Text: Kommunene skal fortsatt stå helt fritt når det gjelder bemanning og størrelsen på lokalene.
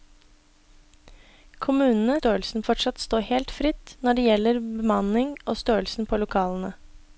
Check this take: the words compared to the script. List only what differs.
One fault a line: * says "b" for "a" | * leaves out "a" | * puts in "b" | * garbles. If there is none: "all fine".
* says "størrelsen" for "skal"